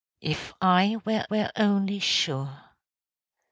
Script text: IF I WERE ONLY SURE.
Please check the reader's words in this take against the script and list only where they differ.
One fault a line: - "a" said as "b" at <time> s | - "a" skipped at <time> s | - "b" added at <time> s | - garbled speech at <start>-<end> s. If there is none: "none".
- "WERE" added at 1.3 s